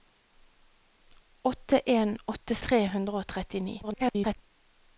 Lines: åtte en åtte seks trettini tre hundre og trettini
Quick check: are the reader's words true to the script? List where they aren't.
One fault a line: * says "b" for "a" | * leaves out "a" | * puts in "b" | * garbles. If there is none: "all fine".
* leaves out "seks trettini"
* garbles